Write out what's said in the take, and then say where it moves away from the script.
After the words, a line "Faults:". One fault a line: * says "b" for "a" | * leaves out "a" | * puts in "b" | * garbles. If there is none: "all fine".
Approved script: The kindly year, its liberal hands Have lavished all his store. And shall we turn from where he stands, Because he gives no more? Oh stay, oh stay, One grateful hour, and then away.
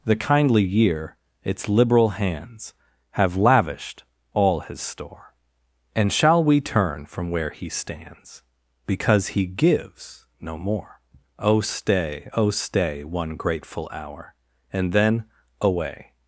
The kindly year, its liberal hands Have lavished all his store. And shall we turn from where he stands, Because he gives no more? Oh stay, oh stay, One grateful hour, and then away.
Faults:
all fine